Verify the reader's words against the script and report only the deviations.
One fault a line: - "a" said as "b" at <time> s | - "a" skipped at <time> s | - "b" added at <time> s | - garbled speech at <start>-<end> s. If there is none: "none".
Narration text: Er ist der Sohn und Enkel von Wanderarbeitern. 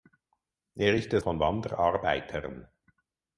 - "Sohn und Enkel" skipped at 1.2 s